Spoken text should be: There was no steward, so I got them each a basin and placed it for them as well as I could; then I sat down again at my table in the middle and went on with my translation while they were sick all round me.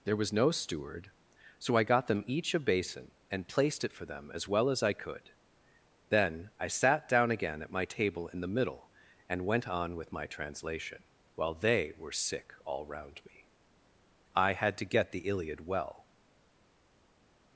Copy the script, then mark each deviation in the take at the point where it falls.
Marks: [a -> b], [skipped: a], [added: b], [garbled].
There was no steward, so I got them each a basin and placed it for them as well as I could; then I sat down again at my table in the middle and went on with my translation while they were sick all round me. [added: I had to get the Iliad well]